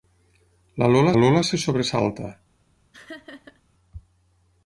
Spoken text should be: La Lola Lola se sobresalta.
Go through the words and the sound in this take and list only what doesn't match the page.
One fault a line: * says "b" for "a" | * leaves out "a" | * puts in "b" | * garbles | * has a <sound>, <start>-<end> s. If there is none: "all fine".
* has a laugh, 2.9-3.6 s